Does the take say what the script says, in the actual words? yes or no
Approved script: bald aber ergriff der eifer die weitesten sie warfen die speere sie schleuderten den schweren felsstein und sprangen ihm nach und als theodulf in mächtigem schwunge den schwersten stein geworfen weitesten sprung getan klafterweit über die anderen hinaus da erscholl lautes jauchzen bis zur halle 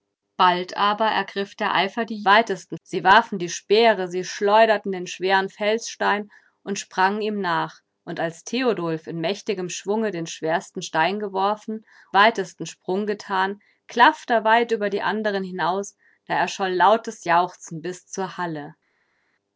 yes